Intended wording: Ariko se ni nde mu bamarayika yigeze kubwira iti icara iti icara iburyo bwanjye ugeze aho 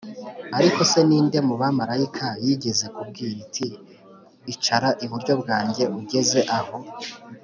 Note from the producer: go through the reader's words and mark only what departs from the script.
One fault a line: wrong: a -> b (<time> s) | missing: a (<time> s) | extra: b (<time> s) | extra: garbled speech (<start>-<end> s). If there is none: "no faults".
missing: iti icara (4.9 s)